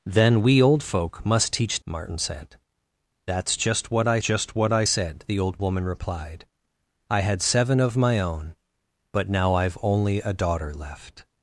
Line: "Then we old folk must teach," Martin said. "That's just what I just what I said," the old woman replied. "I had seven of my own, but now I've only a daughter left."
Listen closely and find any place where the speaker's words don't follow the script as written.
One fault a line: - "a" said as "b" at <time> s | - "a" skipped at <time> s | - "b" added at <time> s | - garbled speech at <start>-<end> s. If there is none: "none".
none